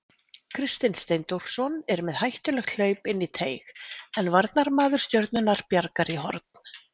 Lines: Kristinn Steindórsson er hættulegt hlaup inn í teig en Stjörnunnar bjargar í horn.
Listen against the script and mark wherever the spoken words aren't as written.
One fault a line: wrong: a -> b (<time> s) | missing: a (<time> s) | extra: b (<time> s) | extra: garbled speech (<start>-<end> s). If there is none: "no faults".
extra: með (2.1 s)
extra: varnarmaður (4.4 s)